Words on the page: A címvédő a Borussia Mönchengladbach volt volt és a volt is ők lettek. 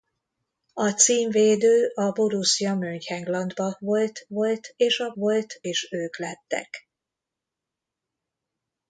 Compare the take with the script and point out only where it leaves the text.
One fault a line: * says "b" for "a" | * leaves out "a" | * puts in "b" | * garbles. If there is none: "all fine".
all fine